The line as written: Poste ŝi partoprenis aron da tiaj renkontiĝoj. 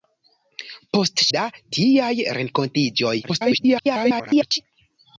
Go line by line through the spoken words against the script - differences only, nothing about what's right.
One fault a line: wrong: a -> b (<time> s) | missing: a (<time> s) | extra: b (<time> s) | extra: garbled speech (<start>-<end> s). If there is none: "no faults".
missing: ŝi partoprenis aron (1.3 s)
extra: garbled speech (3.2-4.6 s)